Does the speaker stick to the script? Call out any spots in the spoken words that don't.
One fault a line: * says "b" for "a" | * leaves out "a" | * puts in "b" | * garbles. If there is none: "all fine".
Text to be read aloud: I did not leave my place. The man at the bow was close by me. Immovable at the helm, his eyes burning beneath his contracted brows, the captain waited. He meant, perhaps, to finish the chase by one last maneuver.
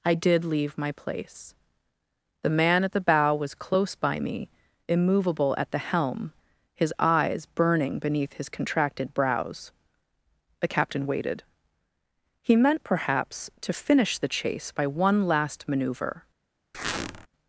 * leaves out "not"